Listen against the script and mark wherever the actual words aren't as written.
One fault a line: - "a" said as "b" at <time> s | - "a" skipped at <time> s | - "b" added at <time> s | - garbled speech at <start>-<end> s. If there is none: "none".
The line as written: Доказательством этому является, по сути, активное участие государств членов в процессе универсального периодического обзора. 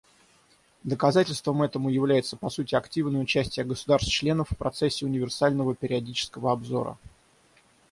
none